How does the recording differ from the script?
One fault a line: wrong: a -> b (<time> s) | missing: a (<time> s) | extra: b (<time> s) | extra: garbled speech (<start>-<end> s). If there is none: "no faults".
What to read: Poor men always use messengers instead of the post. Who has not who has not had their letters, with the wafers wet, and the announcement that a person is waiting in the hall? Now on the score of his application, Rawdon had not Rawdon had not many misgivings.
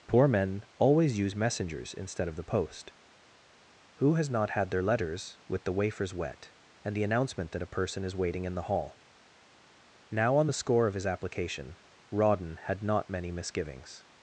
missing: who has not (4.5 s)
missing: Rawdon had not (13.1 s)